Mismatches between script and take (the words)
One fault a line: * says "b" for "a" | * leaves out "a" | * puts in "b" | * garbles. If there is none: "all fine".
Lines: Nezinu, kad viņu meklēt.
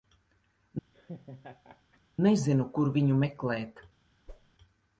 * says "kur" for "kad"